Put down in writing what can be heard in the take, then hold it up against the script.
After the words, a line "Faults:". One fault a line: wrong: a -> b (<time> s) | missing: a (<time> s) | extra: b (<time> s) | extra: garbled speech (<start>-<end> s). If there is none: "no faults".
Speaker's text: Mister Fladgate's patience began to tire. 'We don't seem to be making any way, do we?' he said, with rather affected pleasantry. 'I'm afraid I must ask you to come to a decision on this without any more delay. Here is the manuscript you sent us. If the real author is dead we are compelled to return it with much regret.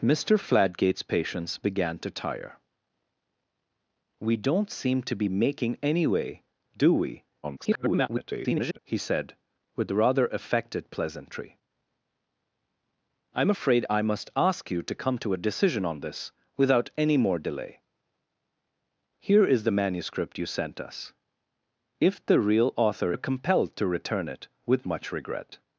Mister Fladgate's patience began to tire. 'We don't seem to be making any way, do we?' [garbled] he said, with rather affected pleasantry. 'I'm afraid I must ask you to come to a decision on this without any more delay. Here is the manuscript you sent us. If the real author are compelled to return it with much regret.
Faults:
extra: garbled speech (7.4-8.8 s)
missing: is dead we (23.1 s)